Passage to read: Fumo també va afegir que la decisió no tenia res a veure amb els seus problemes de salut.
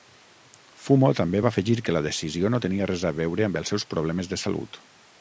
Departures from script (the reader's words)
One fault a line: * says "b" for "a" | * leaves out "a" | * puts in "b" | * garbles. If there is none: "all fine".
all fine